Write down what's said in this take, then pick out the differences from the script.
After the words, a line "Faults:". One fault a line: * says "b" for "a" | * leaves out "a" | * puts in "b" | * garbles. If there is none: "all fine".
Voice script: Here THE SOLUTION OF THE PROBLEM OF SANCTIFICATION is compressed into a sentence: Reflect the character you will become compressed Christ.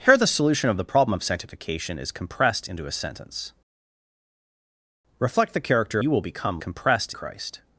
Here THE SOLUTION OF THE PROBLEM OF SANCTIFICATION is compressed into a sentence: Reflect the character you will become compressed Christ.
Faults:
all fine